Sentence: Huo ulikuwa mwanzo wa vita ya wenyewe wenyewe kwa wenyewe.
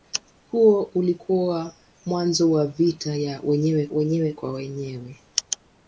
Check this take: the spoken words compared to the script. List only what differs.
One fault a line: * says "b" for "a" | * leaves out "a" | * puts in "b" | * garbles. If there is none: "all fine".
all fine